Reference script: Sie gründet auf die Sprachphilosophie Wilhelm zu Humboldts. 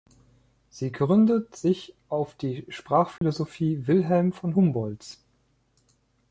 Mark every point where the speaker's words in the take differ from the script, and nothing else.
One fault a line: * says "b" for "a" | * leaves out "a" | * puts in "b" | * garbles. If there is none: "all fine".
* puts in "sich"
* says "von" for "zu"